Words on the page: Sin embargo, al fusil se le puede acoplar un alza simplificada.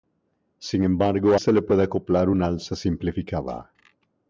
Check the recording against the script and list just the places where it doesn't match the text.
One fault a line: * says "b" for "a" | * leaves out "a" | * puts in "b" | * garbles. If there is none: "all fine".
* leaves out "al fusil"